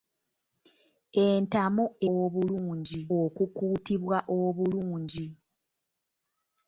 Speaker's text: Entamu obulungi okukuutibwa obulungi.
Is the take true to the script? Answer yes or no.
yes